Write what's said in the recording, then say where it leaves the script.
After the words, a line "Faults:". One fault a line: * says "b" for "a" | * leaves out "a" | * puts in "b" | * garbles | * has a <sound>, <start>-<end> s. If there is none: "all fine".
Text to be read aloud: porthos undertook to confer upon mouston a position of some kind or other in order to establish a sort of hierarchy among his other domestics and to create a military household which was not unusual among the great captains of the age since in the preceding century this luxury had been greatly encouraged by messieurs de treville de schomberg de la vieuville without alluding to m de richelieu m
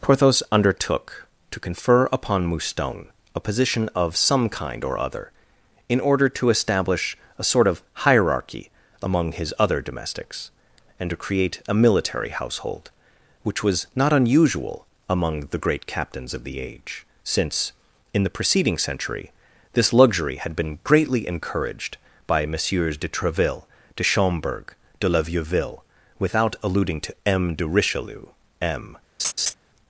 porthos undertook to confer upon mouston a position of some kind or other in order to establish a sort of hierarchy among his other domestics and to create a military household which was not unusual among the great captains of the age since in the preceding century this luxury had been greatly encouraged by messieurs de treville de schomberg de la vieuville without alluding to m de richelieu m
Faults:
* has a laugh, 29.2-29.5 s